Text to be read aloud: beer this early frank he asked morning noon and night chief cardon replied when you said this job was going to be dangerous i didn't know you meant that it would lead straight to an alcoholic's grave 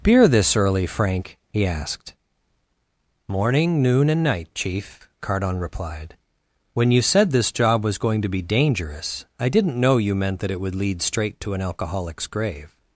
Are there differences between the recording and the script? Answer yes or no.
no